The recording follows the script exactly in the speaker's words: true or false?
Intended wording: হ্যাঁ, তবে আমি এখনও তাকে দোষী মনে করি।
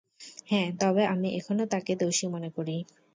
true